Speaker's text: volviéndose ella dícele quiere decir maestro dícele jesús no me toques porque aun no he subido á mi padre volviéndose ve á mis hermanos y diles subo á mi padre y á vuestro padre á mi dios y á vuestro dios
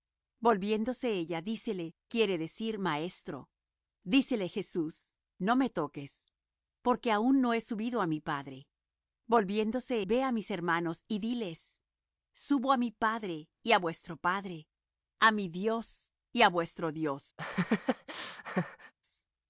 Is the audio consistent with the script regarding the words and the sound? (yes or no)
no